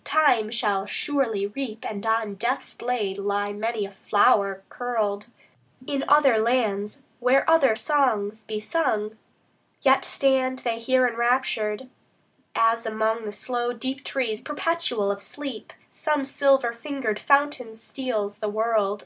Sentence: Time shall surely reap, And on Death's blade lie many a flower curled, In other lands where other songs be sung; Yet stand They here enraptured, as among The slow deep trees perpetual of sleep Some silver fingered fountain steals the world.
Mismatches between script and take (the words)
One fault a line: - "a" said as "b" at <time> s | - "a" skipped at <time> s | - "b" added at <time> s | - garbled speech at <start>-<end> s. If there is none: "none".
none